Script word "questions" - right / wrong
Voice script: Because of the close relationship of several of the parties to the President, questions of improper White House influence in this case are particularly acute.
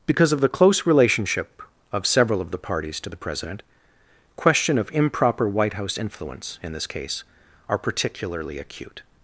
wrong